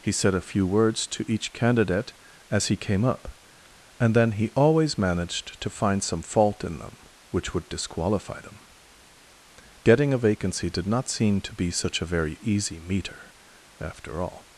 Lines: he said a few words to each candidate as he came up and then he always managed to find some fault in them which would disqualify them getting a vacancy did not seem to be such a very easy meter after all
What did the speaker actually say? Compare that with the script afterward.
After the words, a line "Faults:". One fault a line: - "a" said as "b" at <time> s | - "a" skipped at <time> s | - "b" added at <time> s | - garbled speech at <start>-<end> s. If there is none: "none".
he said a few words to each candidate as he came up and then he always managed to find some fault in them which would disqualify them getting a vacancy did not seem to be such a very easy meter after all
Faults:
none